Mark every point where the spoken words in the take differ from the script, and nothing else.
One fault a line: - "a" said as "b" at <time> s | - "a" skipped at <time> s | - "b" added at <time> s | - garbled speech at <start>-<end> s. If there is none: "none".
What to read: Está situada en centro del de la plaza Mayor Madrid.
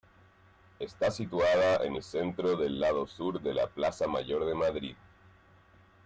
- "el" added at 1.9 s
- "lado sur" added at 2.8 s
- "de" added at 4.4 s